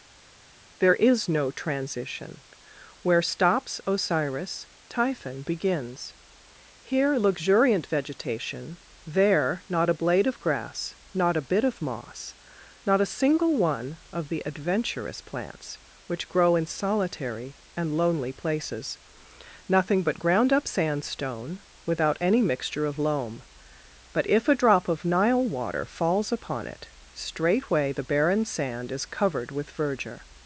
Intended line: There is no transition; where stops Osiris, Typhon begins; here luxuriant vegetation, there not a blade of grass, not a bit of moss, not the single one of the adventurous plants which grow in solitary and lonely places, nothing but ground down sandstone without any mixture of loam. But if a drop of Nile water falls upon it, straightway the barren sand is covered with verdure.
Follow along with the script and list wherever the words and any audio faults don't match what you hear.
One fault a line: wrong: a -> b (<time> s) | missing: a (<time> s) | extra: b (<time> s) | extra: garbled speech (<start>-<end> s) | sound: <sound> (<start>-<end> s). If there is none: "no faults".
wrong: the -> a (13.0 s)
wrong: down -> up (20.5 s)